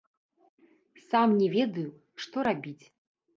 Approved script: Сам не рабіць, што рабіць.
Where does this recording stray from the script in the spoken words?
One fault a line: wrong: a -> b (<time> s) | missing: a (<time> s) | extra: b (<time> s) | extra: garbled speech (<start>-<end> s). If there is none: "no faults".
wrong: рабіць -> ведаю (1.6 s)